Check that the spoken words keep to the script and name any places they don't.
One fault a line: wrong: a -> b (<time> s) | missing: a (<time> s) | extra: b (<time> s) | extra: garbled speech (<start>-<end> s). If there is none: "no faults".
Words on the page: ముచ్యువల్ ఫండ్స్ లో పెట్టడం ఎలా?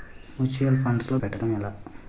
no faults